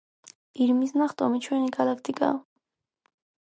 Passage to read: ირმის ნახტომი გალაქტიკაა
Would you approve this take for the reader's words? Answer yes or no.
no